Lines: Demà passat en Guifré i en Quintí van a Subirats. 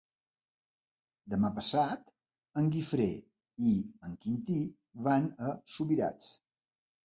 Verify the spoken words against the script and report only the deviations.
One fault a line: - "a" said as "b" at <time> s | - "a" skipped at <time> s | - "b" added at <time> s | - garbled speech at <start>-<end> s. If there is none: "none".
none